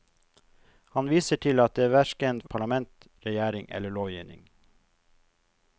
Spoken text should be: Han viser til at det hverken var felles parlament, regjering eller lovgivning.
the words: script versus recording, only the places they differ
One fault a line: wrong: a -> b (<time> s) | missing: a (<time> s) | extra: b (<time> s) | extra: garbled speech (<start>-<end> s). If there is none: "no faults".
missing: var felles (2.4 s)